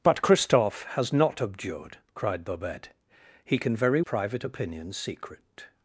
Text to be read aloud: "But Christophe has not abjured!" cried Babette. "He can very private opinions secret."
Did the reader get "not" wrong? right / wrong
right